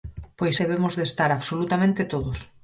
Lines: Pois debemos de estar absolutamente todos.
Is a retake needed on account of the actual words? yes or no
no